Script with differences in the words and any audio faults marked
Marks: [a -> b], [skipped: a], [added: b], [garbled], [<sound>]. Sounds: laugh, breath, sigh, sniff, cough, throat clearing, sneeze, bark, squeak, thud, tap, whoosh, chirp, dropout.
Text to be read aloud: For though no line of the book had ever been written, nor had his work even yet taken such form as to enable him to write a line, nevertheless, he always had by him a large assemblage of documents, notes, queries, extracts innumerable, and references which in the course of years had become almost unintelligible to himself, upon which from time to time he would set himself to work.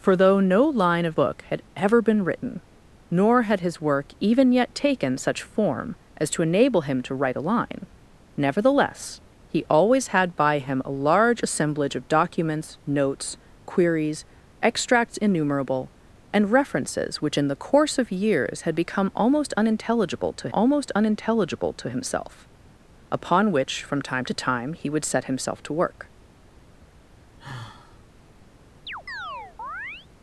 For though no line of [skipped: the] book had ever been written, nor had his work even yet taken such form as to enable him to write a line, nevertheless, he always had by him a large assemblage of documents, notes, queries, extracts innumerable, and references which in the course of years had become almost unintelligible to [added: almost unintelligible to] himself, upon which from time to time he would set himself to work. [sigh] [chirp]